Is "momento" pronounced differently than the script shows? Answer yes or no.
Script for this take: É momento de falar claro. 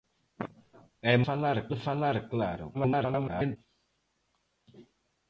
yes